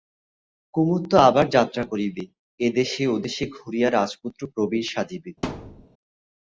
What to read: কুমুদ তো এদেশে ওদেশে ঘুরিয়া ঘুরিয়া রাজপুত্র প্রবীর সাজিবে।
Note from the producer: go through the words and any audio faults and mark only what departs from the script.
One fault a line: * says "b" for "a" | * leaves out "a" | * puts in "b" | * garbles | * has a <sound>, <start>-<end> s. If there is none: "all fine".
* puts in "আবার যাত্রা করিবে"
* leaves out "ঘুরিয়া"
* has a thud, 5.4-5.9 s